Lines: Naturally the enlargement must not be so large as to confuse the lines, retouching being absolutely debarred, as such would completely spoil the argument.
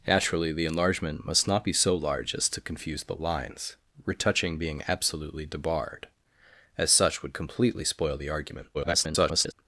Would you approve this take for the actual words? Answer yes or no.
no